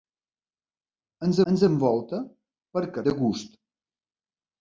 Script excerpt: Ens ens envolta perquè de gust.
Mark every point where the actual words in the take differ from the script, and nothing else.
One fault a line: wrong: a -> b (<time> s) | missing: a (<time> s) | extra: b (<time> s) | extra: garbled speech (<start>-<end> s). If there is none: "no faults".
no faults